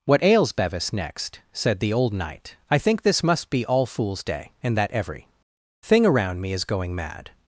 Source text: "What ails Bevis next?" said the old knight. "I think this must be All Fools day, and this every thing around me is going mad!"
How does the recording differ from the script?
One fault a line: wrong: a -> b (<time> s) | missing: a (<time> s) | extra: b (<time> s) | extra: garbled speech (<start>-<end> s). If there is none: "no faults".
wrong: this -> that (4.8 s)